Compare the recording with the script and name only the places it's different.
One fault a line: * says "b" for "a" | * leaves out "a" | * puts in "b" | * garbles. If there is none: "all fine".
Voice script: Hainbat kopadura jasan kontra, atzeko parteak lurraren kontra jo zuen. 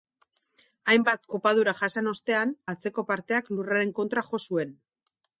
* says "ostean" for "kontra"